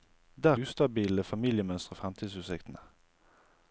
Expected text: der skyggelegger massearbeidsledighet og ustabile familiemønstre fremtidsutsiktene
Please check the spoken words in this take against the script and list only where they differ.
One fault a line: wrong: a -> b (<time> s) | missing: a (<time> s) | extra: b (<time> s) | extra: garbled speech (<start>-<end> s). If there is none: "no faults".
missing: skyggelegger massearbeidsledighet og (0.6 s)